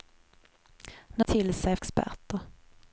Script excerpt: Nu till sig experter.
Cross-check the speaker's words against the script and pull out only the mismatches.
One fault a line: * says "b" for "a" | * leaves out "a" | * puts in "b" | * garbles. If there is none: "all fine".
all fine